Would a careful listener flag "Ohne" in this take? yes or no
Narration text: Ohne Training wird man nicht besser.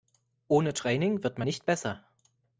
no